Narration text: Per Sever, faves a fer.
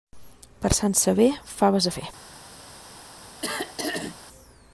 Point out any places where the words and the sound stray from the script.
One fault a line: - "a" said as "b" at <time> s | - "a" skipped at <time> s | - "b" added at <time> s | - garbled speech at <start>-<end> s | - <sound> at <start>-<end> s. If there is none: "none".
- "Sant" added at 0.8 s
- throat clearing at 3.4-4.2 s